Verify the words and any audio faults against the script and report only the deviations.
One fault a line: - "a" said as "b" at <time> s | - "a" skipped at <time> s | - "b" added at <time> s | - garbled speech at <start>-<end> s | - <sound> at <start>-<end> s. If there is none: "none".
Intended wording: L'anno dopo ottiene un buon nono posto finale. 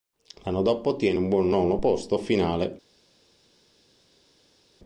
none